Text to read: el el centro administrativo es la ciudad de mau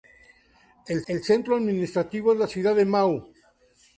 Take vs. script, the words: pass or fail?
pass